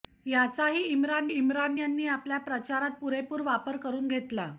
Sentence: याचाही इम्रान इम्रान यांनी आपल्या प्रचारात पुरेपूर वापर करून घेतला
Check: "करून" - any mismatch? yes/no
no